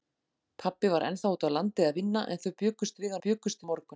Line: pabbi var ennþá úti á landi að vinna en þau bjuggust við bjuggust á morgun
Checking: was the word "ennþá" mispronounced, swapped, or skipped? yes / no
no